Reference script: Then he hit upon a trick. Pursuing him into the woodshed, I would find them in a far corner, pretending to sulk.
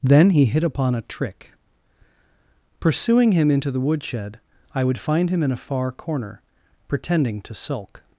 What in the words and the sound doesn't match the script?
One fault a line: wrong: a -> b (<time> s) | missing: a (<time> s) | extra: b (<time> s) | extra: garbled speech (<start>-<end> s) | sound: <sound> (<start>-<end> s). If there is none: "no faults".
wrong: them -> him (5.3 s)